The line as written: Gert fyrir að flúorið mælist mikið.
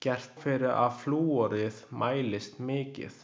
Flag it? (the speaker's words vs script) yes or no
no